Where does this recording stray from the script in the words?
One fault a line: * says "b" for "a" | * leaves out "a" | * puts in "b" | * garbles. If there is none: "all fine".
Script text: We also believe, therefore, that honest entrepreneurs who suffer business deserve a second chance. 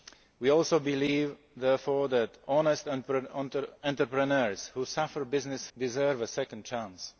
all fine